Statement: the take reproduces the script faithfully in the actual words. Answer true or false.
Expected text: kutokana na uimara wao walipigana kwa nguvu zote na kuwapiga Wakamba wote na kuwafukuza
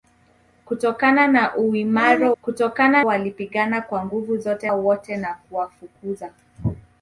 false